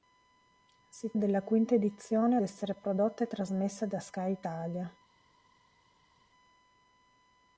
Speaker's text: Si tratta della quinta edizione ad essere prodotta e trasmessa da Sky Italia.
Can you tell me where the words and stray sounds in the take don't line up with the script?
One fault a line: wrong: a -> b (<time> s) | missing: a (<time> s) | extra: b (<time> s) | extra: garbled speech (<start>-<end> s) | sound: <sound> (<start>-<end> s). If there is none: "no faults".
missing: tratta (1.1 s)
missing: ad (2.4 s)